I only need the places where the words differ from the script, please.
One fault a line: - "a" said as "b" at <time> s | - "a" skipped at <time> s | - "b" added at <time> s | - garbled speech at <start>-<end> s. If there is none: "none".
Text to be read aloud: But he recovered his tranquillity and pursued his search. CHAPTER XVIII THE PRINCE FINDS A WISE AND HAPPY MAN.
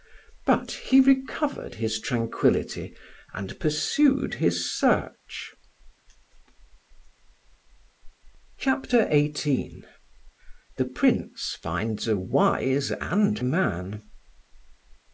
- "HAPPY" skipped at 13.4 s